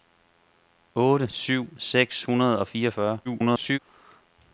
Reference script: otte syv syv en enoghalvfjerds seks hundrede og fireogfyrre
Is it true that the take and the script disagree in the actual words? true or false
true